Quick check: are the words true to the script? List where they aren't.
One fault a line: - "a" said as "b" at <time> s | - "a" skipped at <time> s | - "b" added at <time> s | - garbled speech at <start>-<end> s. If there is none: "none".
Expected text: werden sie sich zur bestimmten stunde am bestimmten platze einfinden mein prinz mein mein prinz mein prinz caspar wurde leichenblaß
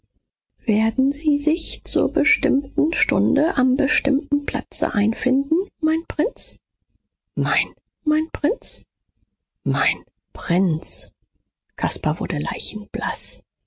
none